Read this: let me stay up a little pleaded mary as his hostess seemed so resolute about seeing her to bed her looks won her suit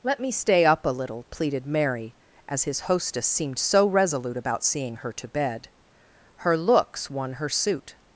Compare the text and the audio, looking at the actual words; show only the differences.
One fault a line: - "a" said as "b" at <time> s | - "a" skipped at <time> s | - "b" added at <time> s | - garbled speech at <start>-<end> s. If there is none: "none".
none